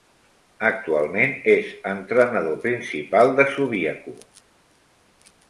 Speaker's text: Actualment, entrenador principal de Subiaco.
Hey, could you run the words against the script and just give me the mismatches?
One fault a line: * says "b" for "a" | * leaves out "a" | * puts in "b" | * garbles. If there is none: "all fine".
* puts in "és"